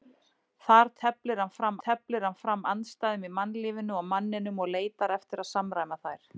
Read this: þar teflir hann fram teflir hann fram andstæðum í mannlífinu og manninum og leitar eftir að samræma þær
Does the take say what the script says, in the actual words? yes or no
yes